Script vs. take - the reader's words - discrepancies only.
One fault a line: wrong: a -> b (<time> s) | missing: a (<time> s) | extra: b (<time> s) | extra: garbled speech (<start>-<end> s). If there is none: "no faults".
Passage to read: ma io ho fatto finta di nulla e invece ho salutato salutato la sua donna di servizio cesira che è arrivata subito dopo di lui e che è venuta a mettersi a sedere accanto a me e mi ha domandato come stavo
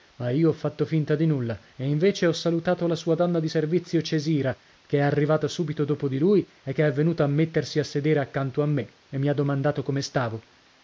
missing: salutato (2.9 s)